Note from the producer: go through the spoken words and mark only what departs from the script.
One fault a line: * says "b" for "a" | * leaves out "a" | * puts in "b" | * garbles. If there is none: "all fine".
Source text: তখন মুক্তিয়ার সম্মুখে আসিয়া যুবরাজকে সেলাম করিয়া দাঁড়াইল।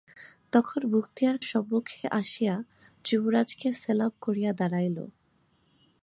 all fine